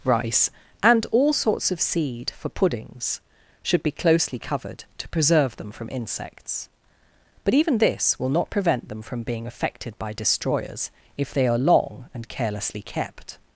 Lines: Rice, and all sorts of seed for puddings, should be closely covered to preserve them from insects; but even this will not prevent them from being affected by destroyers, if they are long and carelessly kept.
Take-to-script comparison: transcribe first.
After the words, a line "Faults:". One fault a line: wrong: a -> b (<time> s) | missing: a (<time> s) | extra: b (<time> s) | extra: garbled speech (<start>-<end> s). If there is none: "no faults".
Rice, and all sorts of seed for puddings, should be closely covered to preserve them from insects; but even this will not prevent them from being affected by destroyers, if they are long and carelessly kept.
Faults:
no faults